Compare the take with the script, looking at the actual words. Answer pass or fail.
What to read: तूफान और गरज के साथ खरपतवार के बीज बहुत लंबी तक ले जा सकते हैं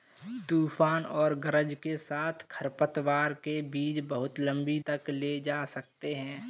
pass